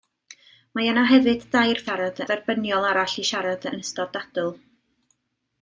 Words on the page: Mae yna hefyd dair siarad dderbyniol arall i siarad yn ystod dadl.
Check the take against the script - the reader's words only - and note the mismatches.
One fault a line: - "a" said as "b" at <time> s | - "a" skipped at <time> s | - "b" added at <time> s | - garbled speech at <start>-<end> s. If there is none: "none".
none